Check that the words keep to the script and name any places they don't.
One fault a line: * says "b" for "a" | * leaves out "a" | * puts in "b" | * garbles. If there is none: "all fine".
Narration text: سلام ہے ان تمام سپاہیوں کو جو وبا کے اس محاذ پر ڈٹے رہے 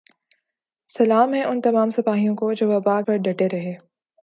* leaves out "کے اس محاذ"